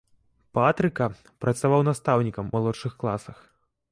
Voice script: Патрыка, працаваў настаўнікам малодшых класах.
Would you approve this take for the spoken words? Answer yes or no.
yes